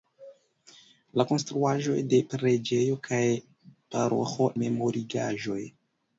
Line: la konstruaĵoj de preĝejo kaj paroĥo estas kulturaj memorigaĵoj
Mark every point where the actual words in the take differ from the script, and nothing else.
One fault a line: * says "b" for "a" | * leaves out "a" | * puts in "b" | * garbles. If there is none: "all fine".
* leaves out "estas kulturaj"